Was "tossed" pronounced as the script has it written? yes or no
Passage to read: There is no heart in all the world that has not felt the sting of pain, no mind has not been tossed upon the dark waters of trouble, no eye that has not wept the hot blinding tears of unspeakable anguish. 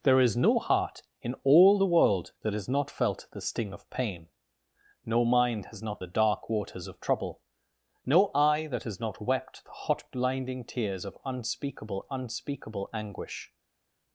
no